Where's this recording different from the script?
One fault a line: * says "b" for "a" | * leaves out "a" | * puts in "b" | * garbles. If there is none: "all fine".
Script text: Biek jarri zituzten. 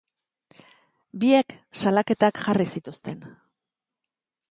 * puts in "salaketak"